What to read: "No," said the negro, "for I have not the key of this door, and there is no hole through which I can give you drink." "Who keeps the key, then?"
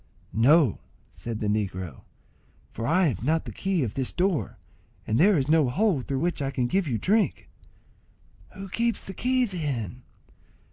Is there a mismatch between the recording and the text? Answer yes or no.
no